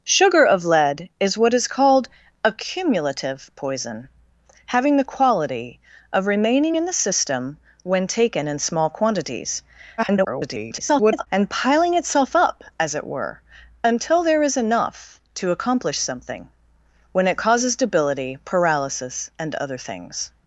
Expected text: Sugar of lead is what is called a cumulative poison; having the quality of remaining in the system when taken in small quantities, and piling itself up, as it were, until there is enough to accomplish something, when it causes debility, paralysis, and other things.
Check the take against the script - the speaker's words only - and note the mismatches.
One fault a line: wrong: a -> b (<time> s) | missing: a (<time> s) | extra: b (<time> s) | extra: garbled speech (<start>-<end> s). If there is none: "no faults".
extra: garbled speech (10.0-11.3 s)